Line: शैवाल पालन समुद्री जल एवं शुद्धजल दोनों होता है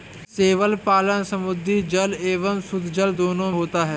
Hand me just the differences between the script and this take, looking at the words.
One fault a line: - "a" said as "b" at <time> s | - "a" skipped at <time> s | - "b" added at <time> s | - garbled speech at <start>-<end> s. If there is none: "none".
none